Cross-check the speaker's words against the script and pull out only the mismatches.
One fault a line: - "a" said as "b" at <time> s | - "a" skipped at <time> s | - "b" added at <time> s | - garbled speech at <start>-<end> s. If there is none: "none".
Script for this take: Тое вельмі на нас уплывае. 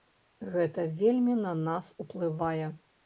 - "Тое" said as "Гэта" at 0.5 s